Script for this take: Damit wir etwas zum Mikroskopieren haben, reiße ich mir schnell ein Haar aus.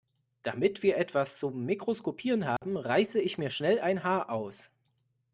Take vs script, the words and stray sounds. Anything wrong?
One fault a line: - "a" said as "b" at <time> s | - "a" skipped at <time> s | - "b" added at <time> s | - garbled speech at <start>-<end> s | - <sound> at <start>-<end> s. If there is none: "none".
- dropout at 2.6-2.6 s